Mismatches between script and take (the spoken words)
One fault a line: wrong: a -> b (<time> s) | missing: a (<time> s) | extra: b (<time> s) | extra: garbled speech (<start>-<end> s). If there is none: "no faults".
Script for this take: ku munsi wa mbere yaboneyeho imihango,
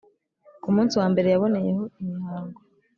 no faults